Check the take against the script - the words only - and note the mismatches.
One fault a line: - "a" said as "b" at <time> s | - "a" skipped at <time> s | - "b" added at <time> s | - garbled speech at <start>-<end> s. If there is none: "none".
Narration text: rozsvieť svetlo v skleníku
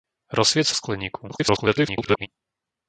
- "svetlo" skipped at 0.7 s
- garbled speech at 1.3-2.3 s